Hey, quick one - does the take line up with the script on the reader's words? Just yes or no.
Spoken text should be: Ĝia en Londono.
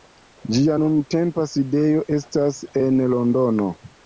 no